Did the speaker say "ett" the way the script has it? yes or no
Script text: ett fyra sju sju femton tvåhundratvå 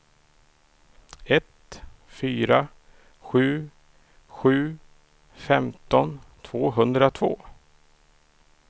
yes